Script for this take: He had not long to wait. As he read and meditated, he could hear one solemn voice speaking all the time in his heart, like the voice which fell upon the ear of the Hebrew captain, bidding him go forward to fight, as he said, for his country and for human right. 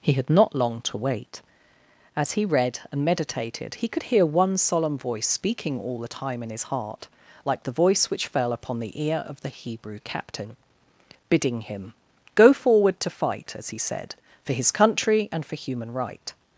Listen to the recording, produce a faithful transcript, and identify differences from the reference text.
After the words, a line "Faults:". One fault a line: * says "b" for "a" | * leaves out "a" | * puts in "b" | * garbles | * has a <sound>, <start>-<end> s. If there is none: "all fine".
He had not long to wait. As he read and meditated, he could hear one solemn voice speaking all the time in his heart, like the voice which fell upon the ear of the Hebrew captain, bidding him go forward to fight, as he said, for his country and for human right.
Faults:
all fine